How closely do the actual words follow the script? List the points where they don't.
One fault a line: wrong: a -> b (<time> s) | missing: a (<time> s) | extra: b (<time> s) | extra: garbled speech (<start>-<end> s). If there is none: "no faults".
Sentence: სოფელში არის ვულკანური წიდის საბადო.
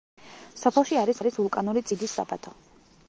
extra: არის (1.2 s)